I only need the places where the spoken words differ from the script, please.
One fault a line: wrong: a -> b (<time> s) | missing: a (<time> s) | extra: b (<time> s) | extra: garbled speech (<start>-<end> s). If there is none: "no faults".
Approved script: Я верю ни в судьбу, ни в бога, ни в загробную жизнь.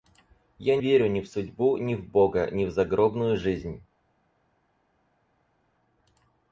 no faults